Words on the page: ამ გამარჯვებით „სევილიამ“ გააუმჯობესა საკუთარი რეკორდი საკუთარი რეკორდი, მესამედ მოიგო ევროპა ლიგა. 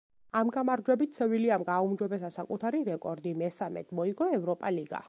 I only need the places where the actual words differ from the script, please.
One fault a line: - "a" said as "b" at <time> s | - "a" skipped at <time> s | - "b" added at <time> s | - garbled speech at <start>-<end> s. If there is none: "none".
- "საკუთარი რეკორდი" skipped at 3.4 s